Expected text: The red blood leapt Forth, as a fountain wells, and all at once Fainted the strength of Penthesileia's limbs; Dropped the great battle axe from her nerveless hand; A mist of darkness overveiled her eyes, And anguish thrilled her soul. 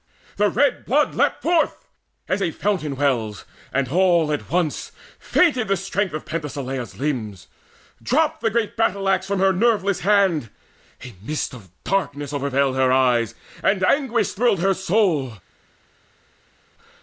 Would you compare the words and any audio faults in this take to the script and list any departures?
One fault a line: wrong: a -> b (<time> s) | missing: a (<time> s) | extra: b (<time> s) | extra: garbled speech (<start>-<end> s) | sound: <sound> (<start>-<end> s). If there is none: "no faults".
no faults